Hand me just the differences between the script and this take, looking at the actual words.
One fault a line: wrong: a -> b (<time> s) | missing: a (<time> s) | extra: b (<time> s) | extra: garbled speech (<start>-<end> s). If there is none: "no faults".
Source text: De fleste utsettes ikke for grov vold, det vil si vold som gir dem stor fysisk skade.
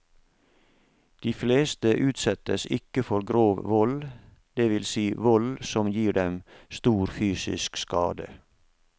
no faults